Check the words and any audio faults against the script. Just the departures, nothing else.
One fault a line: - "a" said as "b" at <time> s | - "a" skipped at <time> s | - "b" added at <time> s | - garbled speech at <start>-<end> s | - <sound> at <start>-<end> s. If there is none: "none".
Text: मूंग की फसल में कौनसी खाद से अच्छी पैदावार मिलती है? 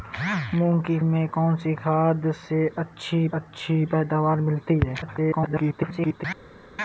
- "फसल" skipped at 1.0 s
- "अच्छी" added at 3.3 s
- garbled speech at 5.0-6.2 s